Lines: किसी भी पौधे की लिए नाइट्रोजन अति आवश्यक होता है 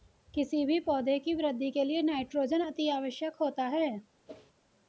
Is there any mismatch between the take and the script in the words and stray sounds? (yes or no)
yes